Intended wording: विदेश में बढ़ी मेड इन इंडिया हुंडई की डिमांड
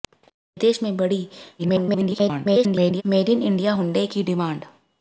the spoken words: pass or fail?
fail